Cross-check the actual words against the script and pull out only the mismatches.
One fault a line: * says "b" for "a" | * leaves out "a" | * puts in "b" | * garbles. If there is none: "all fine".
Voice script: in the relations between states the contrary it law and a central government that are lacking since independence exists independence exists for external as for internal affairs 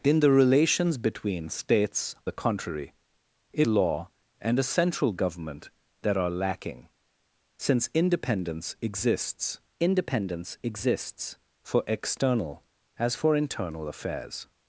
all fine